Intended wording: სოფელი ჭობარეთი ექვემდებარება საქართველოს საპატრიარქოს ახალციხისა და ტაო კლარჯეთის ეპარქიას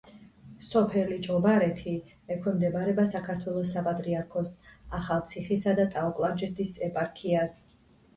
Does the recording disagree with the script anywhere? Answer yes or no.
no